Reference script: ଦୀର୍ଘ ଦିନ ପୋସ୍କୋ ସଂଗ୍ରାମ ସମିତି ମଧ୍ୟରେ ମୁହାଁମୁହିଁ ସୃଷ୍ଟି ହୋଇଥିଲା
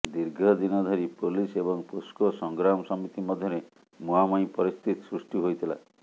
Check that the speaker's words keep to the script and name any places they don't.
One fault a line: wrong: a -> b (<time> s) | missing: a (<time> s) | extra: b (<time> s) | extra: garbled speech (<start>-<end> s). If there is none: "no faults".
extra: ଧରି ପୋଲିସ ଏବଂ (0.8 s)
extra: ପରିସ୍ଥିତି (4.6 s)